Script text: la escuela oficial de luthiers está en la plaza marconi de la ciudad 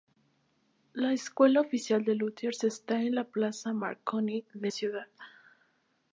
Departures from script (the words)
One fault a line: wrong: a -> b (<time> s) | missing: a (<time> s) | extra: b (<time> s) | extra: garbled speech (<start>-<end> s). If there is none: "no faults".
missing: la (4.7 s)